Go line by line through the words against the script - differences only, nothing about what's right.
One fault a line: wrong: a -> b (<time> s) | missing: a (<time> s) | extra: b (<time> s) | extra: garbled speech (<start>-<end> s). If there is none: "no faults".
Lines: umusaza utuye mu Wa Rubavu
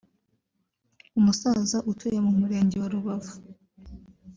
extra: Murenge (2.4 s)